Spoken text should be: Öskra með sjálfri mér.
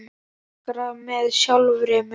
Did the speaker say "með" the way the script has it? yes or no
yes